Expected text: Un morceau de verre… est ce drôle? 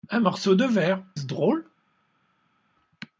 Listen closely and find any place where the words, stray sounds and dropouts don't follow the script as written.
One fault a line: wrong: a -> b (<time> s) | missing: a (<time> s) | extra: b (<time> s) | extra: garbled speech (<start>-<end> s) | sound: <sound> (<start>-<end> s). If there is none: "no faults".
missing: est (1.0 s)